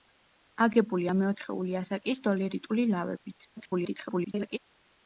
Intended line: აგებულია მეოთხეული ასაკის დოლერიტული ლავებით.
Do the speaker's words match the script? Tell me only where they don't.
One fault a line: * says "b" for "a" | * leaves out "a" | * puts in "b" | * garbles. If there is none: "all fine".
* garbles